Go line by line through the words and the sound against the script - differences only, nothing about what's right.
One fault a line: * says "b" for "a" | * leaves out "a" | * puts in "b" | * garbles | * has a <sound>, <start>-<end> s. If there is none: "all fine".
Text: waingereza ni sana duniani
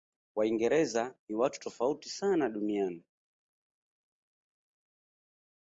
* puts in "watu tofauti"